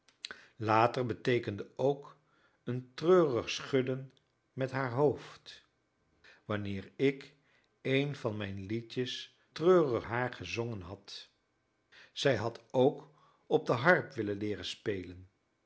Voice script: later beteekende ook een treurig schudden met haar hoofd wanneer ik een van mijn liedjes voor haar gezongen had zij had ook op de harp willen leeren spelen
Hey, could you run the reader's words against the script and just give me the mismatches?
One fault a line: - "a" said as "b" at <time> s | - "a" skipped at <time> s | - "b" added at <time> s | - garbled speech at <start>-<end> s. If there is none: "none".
- "voor" said as "treurig" at 9.5 s